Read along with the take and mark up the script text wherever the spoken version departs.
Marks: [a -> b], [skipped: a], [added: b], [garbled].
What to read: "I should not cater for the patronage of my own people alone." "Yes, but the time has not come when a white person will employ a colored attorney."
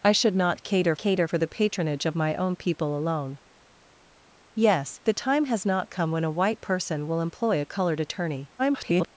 "I should not cater [added: cater] for the patronage of my own people alone." "Yes, [skipped: but] the time has not come when a white person will employ a colored attorney." [garbled]